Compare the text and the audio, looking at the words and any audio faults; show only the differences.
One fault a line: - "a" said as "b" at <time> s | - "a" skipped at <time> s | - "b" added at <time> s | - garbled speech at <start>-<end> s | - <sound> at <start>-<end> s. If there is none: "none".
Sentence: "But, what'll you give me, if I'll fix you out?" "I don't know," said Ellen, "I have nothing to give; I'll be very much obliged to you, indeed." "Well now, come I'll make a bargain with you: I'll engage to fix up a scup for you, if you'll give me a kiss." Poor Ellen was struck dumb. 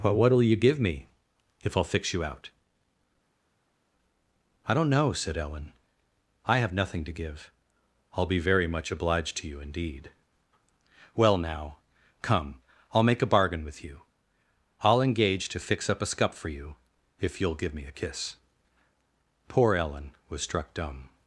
none